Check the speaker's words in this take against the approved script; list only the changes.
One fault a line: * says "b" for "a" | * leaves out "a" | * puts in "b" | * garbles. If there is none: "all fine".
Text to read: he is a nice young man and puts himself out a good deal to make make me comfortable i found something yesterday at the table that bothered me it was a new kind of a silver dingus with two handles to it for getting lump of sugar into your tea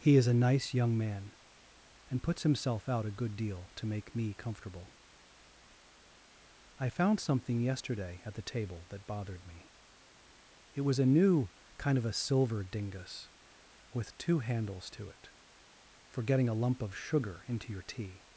* leaves out "make"
* puts in "a"